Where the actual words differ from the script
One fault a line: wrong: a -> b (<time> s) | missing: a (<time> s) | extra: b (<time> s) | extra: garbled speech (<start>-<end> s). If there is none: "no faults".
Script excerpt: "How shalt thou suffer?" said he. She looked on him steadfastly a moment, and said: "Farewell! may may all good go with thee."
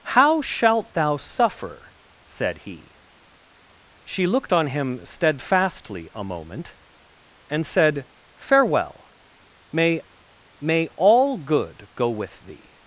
no faults